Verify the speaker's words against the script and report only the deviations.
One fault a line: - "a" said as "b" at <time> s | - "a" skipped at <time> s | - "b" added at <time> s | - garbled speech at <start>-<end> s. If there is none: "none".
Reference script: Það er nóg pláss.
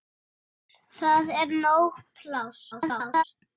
- garbled speech at 2.7-3.2 s